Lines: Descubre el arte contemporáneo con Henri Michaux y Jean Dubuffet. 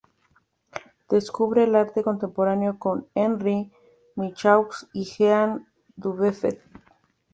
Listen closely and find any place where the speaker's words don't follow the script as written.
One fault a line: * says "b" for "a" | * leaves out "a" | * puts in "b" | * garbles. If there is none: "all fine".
all fine